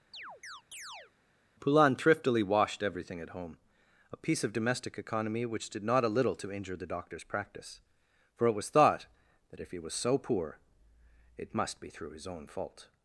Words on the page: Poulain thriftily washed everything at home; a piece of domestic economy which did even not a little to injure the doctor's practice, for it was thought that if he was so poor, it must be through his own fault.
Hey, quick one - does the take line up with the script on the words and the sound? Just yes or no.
no